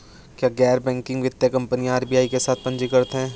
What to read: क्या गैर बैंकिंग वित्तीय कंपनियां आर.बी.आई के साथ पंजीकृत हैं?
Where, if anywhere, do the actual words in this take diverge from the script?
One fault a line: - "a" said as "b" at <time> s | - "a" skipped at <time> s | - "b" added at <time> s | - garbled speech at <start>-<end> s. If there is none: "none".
none